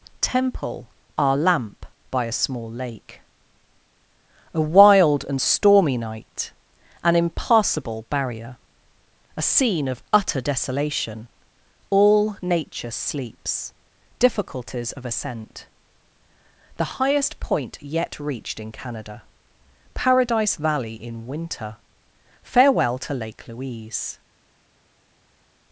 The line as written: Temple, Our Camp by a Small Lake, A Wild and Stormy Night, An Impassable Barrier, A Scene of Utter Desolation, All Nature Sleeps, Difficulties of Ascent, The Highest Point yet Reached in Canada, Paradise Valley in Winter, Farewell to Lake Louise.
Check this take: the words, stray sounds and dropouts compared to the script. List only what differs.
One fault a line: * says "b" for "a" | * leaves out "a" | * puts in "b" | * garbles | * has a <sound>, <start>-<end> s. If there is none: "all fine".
* says "Lamp" for "Camp"